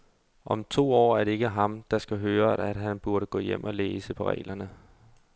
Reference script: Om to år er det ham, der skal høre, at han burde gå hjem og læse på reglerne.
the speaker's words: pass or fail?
fail